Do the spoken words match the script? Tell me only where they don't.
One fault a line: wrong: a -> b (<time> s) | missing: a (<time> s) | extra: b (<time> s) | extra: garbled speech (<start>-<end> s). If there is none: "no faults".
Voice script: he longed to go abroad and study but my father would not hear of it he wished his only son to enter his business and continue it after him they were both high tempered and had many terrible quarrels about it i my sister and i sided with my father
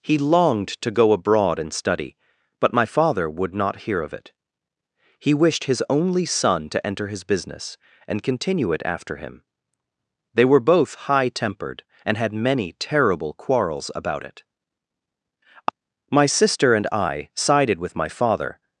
missing: i (14.4 s)